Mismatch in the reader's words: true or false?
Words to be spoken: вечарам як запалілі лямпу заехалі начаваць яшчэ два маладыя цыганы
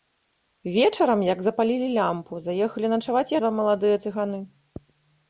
true